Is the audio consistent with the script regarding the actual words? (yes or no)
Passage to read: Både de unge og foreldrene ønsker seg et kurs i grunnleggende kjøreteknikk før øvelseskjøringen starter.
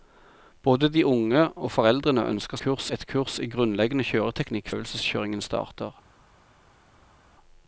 no